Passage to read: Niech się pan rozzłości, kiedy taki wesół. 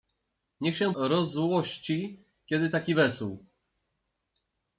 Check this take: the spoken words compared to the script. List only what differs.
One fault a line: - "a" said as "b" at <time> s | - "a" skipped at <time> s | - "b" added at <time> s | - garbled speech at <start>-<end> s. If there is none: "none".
- "pan" skipped at 0.9 s